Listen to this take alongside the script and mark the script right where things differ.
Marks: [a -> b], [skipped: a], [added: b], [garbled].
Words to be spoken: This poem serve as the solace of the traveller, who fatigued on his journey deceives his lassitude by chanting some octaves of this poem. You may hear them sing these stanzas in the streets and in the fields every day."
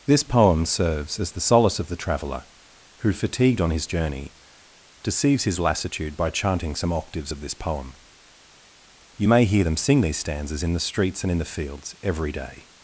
This poem [serve -> serves] as the solace of the traveller, who fatigued on his journey deceives his lassitude by chanting some octaves of this poem. You may hear them sing these stanzas in the streets and in the fields every day."